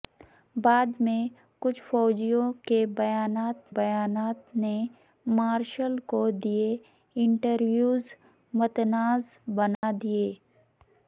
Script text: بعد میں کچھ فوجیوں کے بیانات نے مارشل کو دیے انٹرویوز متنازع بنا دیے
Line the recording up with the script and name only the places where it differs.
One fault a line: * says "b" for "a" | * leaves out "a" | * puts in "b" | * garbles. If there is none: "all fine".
* puts in "بیانات"